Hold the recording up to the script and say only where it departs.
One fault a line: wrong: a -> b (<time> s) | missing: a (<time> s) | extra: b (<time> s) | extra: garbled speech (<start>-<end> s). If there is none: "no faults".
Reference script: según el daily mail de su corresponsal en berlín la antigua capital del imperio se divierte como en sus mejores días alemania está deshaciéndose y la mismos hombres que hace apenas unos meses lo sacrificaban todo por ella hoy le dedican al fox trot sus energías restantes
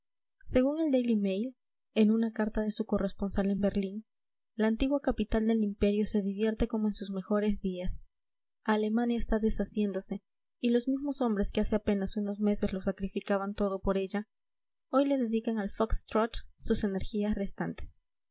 extra: en una carta (1.9 s)
wrong: la -> los (10.7 s)